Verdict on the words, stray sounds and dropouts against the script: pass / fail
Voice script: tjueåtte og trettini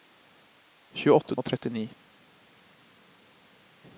pass